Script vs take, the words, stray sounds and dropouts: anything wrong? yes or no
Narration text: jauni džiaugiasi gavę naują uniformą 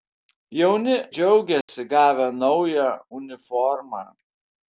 yes